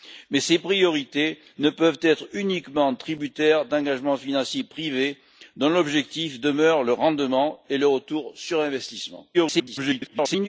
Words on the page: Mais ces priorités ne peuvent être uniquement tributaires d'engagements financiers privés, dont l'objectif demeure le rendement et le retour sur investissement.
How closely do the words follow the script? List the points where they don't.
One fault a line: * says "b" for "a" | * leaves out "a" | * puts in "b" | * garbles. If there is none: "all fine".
* garbles